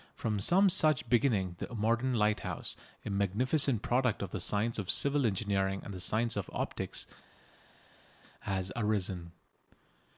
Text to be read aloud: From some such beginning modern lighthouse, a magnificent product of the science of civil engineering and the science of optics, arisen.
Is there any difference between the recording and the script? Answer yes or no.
yes